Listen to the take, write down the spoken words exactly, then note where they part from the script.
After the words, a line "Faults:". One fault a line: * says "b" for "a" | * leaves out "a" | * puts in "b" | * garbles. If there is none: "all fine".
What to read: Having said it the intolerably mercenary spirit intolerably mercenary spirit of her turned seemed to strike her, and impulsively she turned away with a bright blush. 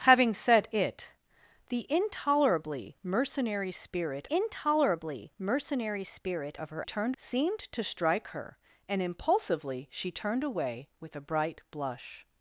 Having said it the intolerably mercenary spirit intolerably mercenary spirit of her turned seemed to strike her, and impulsively she turned away with a bright blush.
Faults:
all fine